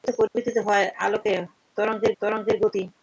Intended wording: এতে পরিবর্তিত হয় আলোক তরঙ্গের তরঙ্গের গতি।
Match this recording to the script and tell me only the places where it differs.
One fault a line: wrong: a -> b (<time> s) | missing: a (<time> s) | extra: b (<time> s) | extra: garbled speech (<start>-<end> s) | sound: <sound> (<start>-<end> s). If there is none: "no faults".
sound: dropout (0.3-0.4 s)